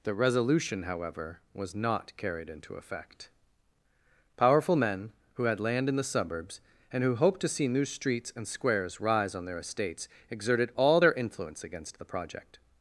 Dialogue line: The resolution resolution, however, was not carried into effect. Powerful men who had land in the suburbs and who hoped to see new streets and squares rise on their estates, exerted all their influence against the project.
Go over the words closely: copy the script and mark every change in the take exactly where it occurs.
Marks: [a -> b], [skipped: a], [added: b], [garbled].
The resolution [skipped: resolution,] however, was not carried into effect. Powerful men who had land in the suburbs and who hoped to see new streets and squares rise on their estates, exerted all their influence against the project.